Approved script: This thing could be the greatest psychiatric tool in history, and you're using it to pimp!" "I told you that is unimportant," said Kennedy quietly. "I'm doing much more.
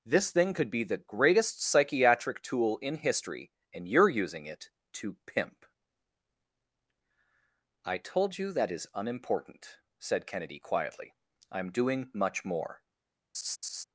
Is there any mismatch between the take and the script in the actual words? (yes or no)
no